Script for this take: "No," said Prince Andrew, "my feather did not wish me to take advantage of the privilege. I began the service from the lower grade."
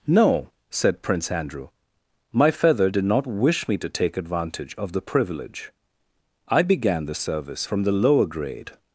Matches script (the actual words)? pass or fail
pass